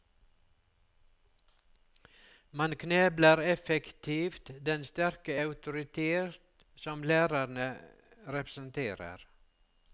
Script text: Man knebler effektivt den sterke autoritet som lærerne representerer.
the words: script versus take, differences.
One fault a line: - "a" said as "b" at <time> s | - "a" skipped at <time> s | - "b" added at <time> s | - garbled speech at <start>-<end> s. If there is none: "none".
none